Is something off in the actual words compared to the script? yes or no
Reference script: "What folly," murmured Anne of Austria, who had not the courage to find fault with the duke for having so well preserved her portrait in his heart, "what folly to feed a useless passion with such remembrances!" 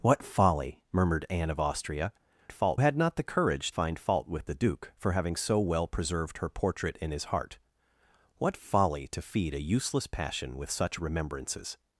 yes